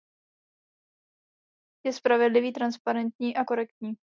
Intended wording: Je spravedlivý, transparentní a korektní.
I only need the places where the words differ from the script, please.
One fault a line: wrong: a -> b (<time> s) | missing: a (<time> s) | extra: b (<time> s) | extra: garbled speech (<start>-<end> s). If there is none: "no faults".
no faults